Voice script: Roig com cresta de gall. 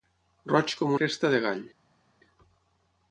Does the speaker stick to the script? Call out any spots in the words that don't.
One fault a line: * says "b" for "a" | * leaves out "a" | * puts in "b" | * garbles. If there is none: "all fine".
all fine